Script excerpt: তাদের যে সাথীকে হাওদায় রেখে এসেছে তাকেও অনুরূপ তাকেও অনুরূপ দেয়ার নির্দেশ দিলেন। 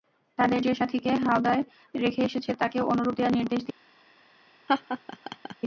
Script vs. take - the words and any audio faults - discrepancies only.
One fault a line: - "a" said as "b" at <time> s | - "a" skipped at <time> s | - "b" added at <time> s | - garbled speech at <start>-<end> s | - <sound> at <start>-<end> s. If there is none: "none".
- "তাকেও অনুরূপ" skipped at 3.2 s
- laugh at 4.7-5.6 s